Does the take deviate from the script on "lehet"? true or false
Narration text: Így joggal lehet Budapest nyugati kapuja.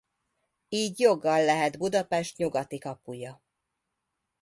false